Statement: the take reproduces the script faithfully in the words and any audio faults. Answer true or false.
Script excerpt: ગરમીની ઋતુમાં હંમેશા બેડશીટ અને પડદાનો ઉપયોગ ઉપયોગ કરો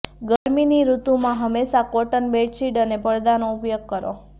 false